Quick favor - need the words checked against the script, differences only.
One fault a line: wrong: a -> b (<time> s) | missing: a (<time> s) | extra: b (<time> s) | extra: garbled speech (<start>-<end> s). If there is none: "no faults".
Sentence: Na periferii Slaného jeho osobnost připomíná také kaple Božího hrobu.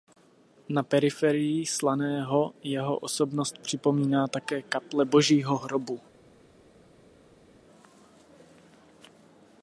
no faults